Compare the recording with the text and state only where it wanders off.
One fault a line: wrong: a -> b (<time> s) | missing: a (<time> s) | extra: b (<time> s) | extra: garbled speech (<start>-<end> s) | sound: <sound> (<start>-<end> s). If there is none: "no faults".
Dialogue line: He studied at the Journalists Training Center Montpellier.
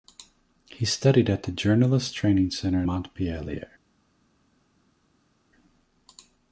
no faults